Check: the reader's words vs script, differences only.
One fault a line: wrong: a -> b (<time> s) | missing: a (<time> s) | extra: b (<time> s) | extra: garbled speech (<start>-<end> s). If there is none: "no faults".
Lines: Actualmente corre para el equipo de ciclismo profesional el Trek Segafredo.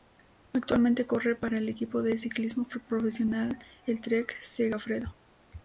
no faults